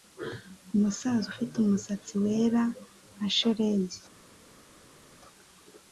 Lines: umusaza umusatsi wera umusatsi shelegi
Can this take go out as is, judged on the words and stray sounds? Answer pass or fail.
fail